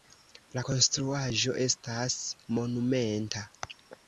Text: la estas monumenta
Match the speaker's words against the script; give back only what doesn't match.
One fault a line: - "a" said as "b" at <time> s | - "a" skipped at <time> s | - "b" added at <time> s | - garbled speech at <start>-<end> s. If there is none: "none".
- "konstruaĵo" added at 0.7 s